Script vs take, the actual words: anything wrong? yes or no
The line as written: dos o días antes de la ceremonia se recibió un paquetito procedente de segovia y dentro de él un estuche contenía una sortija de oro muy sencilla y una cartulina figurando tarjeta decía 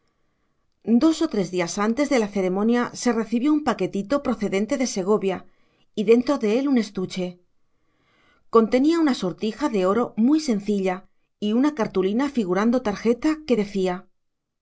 yes